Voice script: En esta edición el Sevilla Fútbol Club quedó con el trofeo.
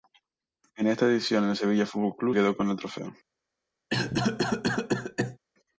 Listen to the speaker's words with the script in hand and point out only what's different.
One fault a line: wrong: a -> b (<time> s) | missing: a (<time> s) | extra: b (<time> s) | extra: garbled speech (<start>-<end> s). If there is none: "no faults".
no faults